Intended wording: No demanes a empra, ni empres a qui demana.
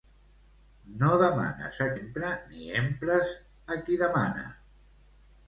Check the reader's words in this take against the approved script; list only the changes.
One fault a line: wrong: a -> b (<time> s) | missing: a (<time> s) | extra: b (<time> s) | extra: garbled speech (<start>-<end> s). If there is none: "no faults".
no faults